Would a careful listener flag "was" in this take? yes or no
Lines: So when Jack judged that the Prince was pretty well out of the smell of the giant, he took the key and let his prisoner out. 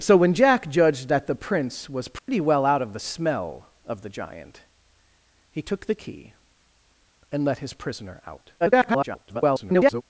no